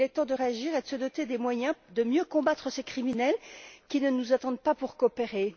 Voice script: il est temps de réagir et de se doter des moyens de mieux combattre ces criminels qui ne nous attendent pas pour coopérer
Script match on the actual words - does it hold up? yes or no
yes